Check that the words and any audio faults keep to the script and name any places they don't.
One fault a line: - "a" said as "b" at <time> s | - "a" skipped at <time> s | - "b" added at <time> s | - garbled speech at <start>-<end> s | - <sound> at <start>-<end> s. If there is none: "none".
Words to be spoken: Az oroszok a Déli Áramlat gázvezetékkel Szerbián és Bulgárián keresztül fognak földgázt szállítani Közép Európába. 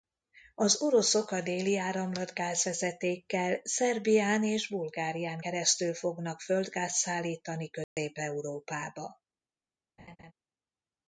- dropout at 7.8-8.0 s
- laugh at 10.0-10.3 s